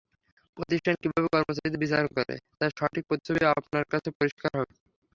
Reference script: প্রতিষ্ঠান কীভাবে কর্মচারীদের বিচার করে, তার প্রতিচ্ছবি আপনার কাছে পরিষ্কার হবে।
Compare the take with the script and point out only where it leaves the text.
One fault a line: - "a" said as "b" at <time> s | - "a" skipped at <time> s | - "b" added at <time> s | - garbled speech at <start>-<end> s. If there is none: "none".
- "সঠিক" added at 2.8 s